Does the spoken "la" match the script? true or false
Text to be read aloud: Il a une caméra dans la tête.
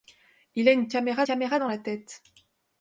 true